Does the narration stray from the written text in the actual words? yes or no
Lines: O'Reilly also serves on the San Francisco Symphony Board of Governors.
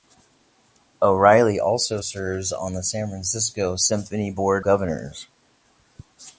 yes